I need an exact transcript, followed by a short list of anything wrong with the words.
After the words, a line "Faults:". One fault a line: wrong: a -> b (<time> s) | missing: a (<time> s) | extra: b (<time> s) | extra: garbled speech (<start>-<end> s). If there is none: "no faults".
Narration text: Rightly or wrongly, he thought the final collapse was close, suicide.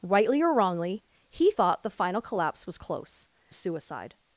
Rightly or wrongly, he thought the final collapse was close, suicide.
Faults:
no faults